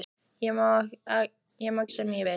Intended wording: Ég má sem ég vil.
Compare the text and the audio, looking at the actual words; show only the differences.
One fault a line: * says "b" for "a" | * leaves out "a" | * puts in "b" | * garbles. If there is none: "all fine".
all fine